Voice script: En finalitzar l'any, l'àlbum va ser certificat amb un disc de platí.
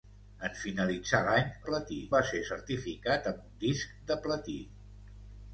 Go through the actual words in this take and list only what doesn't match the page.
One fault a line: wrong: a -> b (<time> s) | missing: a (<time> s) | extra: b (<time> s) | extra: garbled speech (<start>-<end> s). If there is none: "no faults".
wrong: l'àlbum -> platí (1.7 s)